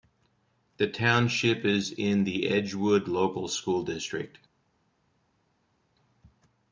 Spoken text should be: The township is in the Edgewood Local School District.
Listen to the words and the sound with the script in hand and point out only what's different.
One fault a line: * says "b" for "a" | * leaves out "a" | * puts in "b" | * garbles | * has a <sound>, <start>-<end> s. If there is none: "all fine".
all fine